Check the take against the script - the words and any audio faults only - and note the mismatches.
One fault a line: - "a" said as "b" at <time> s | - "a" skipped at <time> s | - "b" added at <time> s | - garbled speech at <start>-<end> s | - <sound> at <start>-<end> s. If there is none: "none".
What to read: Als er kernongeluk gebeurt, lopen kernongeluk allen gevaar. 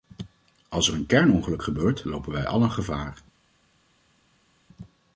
- "een" added at 0.9 s
- "kernongeluk" said as "wij" at 2.3 s